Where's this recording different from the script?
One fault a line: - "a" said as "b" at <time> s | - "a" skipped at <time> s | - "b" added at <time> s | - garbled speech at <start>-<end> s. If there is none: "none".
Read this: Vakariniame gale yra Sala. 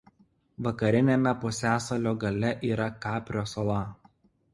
- "pusiasalio" added at 1.4 s
- "Kaprio" added at 3.0 s